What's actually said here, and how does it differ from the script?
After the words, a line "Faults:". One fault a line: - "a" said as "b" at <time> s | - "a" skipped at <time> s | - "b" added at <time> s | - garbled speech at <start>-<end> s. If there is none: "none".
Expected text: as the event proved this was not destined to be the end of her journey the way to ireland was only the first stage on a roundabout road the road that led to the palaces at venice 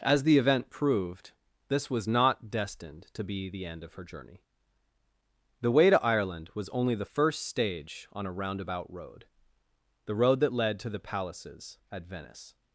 as the event proved this was not destined to be the end of her journey the way to ireland was only the first stage on a roundabout road the road that led to the palaces at venice
Faults:
none